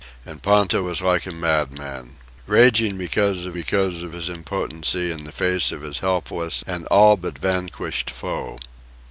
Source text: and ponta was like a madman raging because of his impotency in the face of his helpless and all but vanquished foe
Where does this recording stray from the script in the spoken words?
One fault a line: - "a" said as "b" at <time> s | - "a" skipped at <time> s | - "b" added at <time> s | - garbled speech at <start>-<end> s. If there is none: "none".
- "because of" added at 3.5 s